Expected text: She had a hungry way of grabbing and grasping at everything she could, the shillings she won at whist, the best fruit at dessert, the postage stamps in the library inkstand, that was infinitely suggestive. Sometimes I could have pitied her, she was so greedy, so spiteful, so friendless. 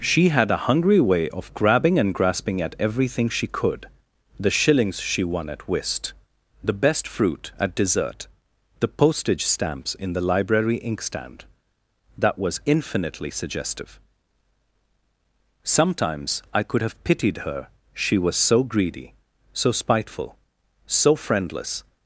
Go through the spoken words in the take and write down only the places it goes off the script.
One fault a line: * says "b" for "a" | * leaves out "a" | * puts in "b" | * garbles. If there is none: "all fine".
all fine